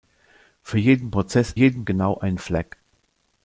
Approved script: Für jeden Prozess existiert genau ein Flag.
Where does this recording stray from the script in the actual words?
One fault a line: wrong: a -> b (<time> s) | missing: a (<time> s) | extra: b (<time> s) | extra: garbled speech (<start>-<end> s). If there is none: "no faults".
wrong: existiert -> jeden (1.5 s)